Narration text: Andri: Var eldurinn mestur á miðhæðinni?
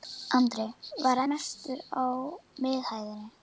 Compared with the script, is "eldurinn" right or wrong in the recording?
wrong